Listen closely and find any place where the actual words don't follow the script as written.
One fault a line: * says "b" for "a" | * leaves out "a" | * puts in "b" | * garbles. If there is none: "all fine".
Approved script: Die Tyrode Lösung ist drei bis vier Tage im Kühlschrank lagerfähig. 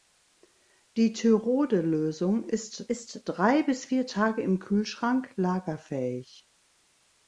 * puts in "ist"